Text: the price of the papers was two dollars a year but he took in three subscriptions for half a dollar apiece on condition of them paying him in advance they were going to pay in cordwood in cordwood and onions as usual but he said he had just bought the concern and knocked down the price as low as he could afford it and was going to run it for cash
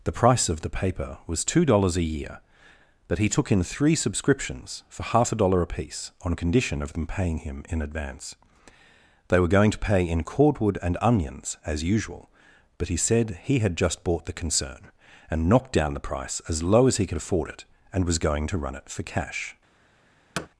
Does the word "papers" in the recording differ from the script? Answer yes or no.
yes